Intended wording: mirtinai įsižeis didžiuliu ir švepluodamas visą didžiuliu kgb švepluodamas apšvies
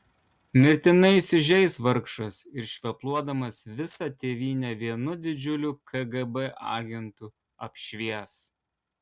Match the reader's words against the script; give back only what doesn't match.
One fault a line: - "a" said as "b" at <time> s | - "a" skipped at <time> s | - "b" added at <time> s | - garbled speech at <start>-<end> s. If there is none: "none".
- "didžiuliu" said as "vargšas" at 1.9 s
- "tėvynę vienu" added at 4.2 s
- "švepluodamas" said as "agentu" at 6.8 s